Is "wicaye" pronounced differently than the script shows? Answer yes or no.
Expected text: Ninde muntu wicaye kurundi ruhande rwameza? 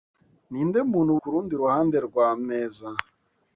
yes